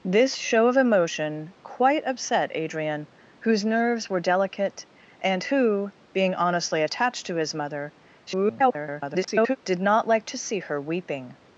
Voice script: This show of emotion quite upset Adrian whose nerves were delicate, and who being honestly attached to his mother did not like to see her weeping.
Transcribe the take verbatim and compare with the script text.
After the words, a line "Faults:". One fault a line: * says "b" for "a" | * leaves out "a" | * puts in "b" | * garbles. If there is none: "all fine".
This show of emotion quite upset Adrian whose nerves were delicate, and who being honestly attached to his mother [garbled] did not like to see her weeping.
Faults:
* garbles